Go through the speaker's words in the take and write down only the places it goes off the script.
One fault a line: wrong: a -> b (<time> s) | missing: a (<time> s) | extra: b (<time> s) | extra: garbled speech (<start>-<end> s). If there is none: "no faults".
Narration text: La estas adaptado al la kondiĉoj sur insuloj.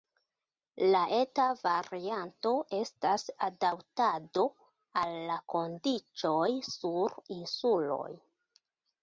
extra: eta varianto (1.2 s)